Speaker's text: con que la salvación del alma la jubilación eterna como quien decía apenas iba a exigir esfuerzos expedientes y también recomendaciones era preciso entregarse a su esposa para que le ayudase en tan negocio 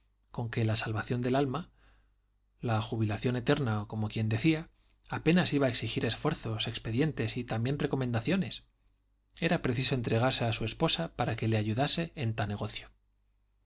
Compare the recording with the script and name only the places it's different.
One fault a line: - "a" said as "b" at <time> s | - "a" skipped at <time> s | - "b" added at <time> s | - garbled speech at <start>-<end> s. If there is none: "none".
none